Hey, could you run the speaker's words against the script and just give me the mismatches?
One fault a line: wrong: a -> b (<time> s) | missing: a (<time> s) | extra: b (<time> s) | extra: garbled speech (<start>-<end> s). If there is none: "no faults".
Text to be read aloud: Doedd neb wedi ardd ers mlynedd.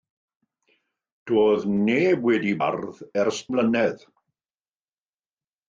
no faults